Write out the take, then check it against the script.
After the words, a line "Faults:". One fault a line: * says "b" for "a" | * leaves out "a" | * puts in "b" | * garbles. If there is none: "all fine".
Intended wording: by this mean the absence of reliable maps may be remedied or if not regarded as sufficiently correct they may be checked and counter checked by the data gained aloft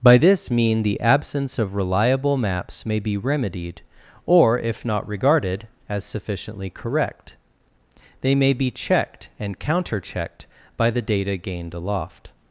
by this mean the absence of reliable maps may be remedied or if not regarded as sufficiently correct they may be checked and counter checked by the data gained aloft
Faults:
all fine